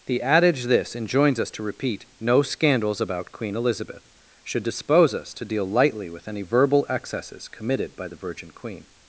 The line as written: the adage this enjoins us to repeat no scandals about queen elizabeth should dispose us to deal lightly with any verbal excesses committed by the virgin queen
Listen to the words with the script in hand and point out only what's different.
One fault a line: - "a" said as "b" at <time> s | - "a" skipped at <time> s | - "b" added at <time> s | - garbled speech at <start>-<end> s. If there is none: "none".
none